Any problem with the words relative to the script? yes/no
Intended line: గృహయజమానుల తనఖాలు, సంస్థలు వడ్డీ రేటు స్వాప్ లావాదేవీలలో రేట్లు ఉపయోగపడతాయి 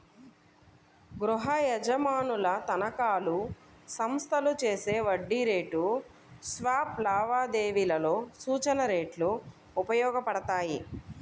yes